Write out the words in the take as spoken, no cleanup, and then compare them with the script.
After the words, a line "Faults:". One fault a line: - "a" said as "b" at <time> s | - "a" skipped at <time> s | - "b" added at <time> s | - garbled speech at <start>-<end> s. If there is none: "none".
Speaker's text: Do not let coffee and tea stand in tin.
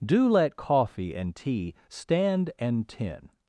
Do let coffee and tea stand and tin.
Faults:
- "not" skipped at 0.3 s
- "in" said as "and" at 2.6 s